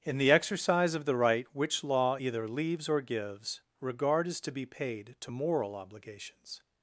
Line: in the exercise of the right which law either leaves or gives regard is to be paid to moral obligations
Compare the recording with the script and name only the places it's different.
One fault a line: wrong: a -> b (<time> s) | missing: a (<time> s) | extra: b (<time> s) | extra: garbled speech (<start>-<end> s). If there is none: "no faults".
no faults